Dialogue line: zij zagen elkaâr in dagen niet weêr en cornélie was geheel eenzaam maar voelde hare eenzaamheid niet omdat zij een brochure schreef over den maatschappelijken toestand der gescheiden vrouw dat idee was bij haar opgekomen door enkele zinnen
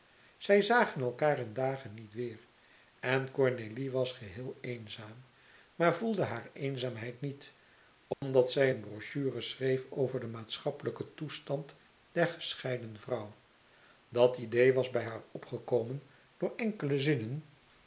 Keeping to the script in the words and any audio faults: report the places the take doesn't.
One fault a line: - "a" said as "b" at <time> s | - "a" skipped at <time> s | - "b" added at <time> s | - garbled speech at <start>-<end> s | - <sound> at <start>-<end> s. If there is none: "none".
- dropout at 8.1-8.2 s